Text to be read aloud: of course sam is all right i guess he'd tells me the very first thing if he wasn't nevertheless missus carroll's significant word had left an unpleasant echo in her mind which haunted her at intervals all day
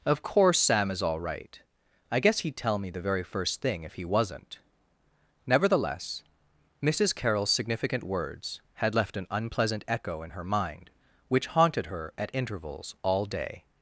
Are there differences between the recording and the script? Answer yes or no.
yes